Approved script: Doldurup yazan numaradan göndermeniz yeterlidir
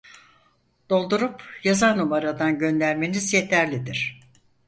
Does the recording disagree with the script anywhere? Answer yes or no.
no